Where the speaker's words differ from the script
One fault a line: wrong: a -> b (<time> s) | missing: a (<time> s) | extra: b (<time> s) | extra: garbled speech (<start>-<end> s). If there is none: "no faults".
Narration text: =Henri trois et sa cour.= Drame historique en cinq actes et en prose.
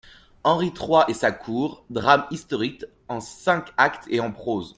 no faults